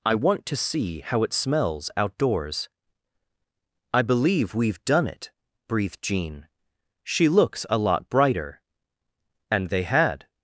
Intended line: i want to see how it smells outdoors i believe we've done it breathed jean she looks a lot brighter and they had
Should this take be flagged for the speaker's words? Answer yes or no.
no